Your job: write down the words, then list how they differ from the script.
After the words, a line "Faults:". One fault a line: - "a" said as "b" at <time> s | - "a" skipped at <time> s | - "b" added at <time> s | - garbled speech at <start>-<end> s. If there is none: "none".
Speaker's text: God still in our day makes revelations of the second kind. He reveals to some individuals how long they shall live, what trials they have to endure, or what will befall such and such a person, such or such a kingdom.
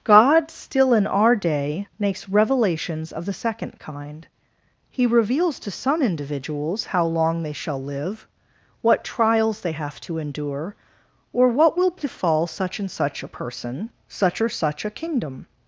God still in our day makes revelations of the second kind. He reveals to some individuals how long they shall live, what trials they have to endure, or what will befall such and such a person, such or such a kingdom.
Faults:
none